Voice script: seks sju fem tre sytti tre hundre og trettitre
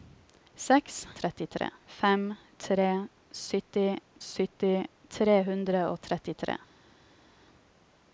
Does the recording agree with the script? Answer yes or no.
no